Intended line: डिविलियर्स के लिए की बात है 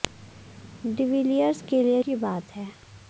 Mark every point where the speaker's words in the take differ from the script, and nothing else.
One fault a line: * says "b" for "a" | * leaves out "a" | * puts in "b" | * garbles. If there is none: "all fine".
all fine